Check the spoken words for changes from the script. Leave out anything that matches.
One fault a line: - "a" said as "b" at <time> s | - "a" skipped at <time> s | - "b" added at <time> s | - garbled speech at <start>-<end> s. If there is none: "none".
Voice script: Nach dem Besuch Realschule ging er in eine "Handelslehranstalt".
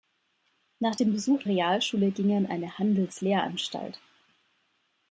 none